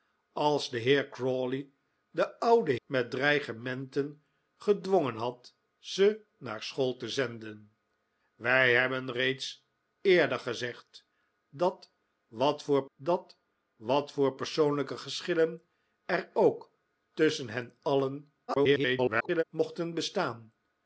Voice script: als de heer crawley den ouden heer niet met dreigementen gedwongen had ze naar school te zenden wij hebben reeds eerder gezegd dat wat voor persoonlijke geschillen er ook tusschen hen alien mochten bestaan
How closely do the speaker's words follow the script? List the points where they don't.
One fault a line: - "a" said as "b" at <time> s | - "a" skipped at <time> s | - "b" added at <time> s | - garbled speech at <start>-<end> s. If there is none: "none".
- "heer niet" skipped at 2.8 s
- "dat wat voor" added at 13.0 s
- garbled speech at 18.5-19.4 s